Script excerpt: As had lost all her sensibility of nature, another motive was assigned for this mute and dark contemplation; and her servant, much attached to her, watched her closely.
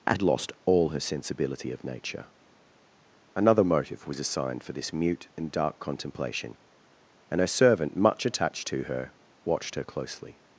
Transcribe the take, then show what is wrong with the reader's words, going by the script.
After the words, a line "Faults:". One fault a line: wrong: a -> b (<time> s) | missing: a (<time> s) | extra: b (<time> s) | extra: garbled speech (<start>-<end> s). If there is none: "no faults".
As had lost all her sensibility of nature, another motive was assigned for this mute and dark contemplation; and her servant, much attached to her, watched her closely.
Faults:
no faults